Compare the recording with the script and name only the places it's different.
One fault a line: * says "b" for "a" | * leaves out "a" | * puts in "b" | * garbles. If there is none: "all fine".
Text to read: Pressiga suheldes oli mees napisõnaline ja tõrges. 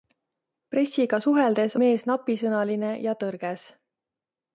* leaves out "oli"